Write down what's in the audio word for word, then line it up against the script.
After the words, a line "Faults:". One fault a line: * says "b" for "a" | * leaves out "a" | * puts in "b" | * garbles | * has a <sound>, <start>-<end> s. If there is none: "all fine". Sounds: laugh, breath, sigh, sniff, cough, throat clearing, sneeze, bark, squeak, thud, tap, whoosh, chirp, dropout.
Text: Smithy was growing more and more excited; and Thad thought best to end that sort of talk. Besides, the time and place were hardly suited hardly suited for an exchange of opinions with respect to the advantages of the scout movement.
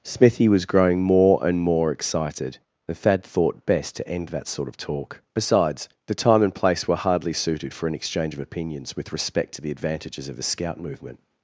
Smithy was growing more and more excited; and Thad thought best to end that sort of talk. Besides, the time and place were hardly suited for an exchange of opinions with respect to the advantages of the scout movement.
Faults:
* leaves out "hardly suited"